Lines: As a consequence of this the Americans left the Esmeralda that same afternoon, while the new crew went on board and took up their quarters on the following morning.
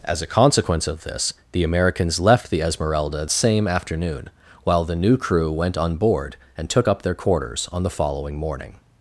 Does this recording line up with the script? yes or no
no